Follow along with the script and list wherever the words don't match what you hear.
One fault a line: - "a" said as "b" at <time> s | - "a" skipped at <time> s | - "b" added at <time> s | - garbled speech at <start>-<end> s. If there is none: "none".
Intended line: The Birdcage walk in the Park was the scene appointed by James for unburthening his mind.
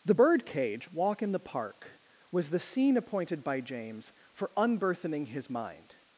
none